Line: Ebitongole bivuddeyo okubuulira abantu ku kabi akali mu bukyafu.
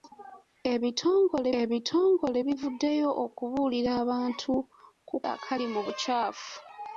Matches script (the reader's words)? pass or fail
fail